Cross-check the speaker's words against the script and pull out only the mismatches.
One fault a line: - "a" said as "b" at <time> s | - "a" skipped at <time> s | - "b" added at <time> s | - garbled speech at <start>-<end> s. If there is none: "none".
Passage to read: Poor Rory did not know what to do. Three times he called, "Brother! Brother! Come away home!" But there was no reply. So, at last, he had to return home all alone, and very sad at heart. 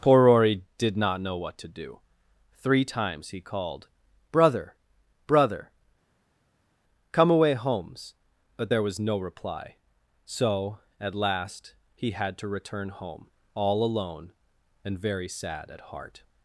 - "home" said as "homes" at 7.5 s